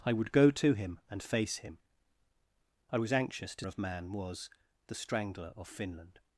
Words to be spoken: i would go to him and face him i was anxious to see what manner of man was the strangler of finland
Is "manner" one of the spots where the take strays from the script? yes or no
yes